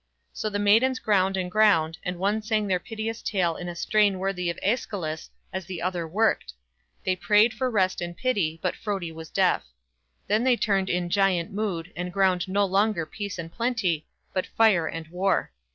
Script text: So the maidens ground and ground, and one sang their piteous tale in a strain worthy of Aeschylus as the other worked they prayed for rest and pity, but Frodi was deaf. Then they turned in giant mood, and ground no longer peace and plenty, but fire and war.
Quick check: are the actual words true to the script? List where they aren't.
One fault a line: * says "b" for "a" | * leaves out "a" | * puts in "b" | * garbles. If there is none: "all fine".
all fine